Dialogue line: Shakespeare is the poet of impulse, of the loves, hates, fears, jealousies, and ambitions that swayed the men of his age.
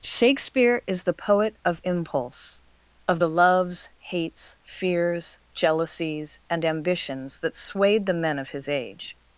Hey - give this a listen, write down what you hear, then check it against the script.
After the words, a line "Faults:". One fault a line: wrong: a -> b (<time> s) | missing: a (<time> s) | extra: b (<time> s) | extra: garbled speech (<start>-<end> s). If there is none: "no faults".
Shakespeare is the poet of impulse, of the loves, hates, fears, jealousies, and ambitions that swayed the men of his age.
Faults:
no faults